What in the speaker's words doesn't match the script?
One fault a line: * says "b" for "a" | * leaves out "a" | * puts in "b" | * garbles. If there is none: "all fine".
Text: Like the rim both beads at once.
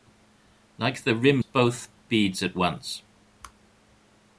all fine